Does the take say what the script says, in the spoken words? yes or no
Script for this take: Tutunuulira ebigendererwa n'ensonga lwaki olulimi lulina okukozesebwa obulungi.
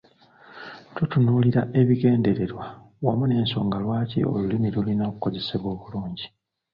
no